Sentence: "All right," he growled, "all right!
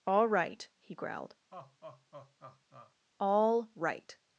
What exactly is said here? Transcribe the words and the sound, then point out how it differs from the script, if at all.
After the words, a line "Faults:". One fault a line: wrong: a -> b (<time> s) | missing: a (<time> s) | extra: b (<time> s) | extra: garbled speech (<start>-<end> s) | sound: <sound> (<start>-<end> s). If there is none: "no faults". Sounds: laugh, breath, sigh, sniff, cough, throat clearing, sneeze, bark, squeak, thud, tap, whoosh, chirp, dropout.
"All right," he growled, "all right!
Faults:
sound: laugh (1.5-2.9 s)